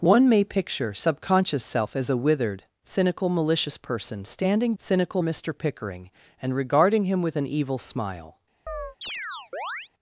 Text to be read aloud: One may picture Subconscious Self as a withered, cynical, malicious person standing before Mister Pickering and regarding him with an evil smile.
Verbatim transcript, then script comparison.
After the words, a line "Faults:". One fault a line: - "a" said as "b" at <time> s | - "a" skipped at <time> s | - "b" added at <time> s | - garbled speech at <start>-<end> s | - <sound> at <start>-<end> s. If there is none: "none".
One may picture Subconscious Self as a withered, cynical, malicious person standing cynical Mister Pickering and regarding him with an evil smile.
Faults:
- "before" said as "cynical" at 4.8 s
- chirp at 8.7-9.9 s